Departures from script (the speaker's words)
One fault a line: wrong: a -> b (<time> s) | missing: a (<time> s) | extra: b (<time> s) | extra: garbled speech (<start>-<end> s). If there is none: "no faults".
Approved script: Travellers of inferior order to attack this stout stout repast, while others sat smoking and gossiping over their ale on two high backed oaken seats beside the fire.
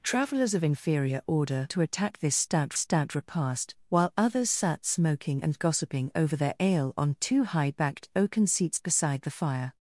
no faults